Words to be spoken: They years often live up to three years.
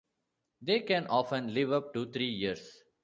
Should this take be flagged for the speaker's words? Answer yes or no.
yes